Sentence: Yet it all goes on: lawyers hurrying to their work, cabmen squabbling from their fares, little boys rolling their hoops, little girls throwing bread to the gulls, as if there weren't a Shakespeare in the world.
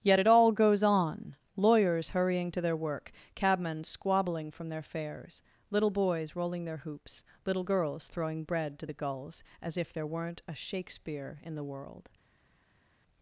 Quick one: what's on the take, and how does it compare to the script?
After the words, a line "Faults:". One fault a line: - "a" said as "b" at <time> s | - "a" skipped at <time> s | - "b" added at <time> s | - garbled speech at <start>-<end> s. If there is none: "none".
Yet it all goes on: lawyers hurrying to their work, cabmen squabbling from their fares, little boys rolling their hoops, little girls throwing bread to the gulls, as if there weren't a Shakespeare in the world.
Faults:
none